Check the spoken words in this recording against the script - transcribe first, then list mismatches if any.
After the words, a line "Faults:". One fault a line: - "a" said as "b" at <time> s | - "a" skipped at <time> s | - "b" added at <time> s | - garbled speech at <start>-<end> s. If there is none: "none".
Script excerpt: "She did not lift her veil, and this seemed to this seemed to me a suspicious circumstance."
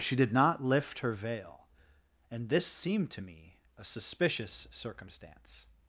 "She did not lift her veil, and this seemed to me a suspicious circumstance."
Faults:
- "this seemed to" skipped at 3.2 s